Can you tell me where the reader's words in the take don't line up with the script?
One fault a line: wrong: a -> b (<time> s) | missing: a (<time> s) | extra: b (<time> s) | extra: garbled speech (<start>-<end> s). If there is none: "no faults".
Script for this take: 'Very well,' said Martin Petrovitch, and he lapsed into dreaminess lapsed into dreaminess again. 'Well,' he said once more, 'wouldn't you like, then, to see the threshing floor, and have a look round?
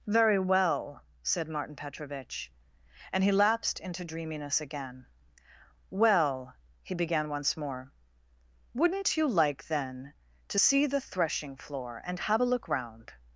missing: lapsed into dreaminess (4.6 s)
wrong: said -> began (7.0 s)